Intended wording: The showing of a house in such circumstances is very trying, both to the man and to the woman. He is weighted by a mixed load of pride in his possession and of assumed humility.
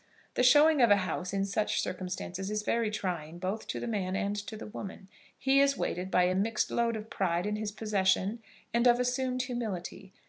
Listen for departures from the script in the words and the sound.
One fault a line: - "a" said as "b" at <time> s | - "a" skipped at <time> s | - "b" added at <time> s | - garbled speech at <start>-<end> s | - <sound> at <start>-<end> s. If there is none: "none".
none